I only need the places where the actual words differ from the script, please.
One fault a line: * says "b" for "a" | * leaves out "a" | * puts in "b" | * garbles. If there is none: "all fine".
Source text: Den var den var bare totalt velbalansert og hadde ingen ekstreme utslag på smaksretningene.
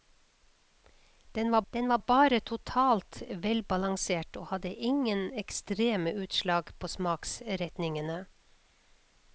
all fine